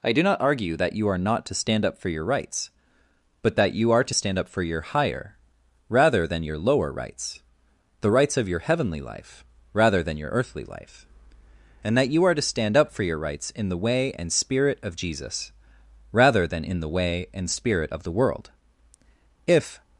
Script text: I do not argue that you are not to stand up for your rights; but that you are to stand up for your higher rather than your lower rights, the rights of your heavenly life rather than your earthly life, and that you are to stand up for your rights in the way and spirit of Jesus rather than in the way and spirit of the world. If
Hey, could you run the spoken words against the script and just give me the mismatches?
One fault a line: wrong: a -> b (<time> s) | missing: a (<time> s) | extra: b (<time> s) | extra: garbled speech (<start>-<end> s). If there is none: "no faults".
no faults